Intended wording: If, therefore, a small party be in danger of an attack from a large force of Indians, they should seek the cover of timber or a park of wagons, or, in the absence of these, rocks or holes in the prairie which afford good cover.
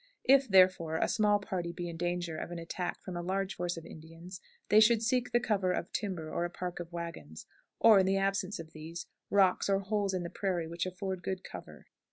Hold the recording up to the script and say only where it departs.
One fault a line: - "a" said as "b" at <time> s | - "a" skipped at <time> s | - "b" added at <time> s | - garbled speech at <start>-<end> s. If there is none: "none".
none